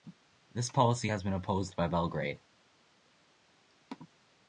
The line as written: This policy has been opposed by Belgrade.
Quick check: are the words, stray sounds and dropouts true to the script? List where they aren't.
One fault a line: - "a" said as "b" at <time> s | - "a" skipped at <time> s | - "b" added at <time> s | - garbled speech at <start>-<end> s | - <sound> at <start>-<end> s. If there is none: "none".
none